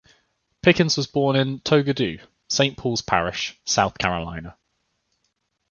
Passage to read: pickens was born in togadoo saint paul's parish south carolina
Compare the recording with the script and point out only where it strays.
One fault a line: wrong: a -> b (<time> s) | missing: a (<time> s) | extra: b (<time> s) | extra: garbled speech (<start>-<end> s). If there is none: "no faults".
no faults